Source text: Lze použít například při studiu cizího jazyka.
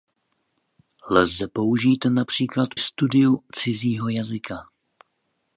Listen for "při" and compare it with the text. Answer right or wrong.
wrong